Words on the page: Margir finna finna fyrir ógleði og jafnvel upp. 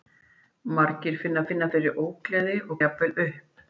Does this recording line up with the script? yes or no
yes